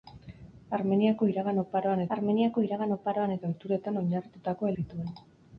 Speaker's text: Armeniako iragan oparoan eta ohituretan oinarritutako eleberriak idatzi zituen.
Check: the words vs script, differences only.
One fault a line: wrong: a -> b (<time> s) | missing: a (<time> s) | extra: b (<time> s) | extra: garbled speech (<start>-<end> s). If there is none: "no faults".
extra: armeniako iragan oparoan (2.1 s)
missing: eleberriak idatzi (4.7 s)